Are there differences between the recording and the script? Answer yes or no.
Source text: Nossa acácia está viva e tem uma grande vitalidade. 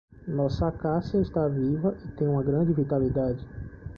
no